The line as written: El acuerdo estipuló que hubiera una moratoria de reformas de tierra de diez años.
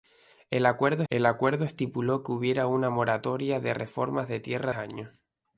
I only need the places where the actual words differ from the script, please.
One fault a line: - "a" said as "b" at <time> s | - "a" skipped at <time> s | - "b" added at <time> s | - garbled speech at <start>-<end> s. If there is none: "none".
- "el acuerdo" added at 1.1 s
- "de diez" skipped at 4.7 s